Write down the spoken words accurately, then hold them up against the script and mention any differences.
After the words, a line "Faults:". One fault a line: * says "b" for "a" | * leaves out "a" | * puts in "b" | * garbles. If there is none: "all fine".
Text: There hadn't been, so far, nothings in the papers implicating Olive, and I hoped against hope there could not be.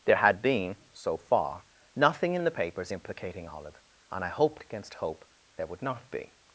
There had been, so far, nothing in the papers implicating Olive, and I hoped against hope there would not be.
Faults:
* says "had" for "hadn't"
* says "nothing" for "nothings"
* says "would" for "could"